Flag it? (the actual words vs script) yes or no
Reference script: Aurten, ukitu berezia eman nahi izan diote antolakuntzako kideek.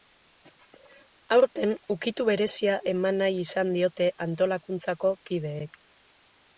no